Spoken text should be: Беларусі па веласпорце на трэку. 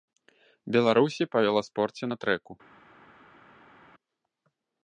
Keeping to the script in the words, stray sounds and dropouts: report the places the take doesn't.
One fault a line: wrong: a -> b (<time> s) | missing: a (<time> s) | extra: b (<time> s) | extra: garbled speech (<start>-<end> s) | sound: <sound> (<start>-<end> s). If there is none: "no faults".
no faults